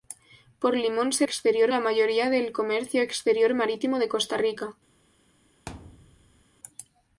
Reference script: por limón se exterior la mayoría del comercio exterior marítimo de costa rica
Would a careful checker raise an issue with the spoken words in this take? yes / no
no